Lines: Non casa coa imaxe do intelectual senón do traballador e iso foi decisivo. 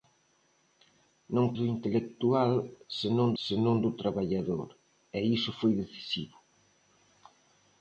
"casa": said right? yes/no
no